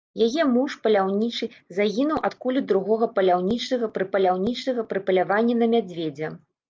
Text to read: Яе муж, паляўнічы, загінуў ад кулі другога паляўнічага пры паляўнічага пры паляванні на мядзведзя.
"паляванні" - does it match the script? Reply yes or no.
yes